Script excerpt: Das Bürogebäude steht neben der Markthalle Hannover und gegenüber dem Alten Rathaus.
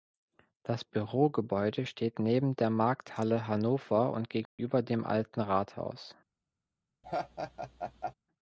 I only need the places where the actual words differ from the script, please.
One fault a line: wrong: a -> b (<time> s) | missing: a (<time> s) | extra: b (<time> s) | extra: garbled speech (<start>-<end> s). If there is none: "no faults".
no faults